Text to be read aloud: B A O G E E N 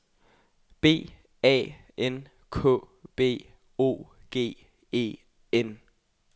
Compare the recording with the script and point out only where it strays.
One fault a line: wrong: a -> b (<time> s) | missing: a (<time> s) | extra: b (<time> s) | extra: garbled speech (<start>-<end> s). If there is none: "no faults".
extra: N K B (2.0 s)
missing: E (5.2 s)